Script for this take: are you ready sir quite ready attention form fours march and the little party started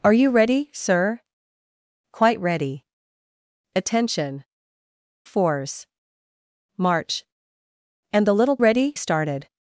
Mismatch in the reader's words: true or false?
true